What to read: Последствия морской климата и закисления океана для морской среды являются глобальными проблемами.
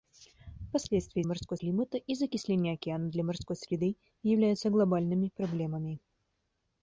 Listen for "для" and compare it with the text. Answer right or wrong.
right